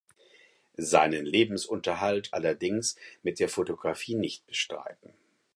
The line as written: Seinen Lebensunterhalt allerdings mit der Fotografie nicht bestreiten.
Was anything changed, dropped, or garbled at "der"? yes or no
no